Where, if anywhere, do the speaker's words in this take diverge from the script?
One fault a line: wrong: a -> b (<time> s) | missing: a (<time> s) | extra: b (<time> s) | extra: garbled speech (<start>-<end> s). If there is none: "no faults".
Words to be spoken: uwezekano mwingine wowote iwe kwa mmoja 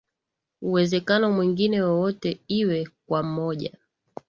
no faults